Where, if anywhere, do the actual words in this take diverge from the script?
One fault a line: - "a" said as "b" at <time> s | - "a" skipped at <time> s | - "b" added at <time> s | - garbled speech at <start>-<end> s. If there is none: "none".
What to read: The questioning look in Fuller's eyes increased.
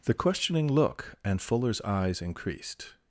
- "in" said as "and" at 1.2 s